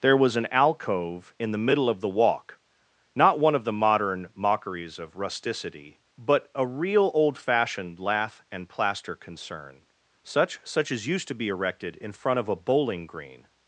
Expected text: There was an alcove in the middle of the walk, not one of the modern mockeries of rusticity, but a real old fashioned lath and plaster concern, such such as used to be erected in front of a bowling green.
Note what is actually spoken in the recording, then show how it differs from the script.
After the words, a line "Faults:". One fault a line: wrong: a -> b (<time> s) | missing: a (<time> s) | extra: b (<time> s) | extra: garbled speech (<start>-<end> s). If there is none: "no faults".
There was an alcove in the middle of the walk, not one of the modern mockeries of rusticity, but a real old fashioned lath and plaster concern, such such as used to be erected in front of a bowling green.
Faults:
no faults